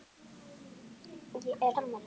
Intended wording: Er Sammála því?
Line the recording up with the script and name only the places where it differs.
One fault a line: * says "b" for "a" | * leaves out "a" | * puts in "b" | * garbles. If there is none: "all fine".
all fine